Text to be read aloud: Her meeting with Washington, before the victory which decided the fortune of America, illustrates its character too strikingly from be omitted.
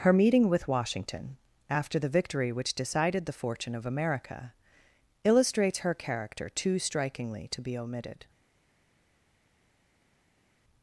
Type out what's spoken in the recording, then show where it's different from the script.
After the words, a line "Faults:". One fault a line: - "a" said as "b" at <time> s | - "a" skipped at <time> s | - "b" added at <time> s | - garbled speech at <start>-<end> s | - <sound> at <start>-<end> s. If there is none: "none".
Her meeting with Washington, after the victory which decided the fortune of America, illustrates her character too strikingly to be omitted.
Faults:
- "before" said as "after" at 1.7 s
- "its" said as "her" at 5.8 s
- "from" said as "to" at 7.5 s